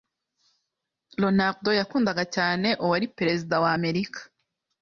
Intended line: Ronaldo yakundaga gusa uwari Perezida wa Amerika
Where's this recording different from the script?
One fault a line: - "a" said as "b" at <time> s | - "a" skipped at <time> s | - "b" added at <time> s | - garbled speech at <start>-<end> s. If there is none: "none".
- "gusa" said as "cyane" at 2.4 s